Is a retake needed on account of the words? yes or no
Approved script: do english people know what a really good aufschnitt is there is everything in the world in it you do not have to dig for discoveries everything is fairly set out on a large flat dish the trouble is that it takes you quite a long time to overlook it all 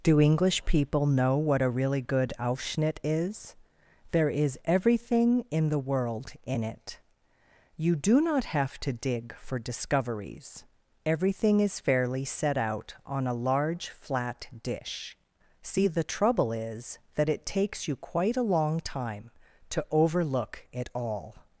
yes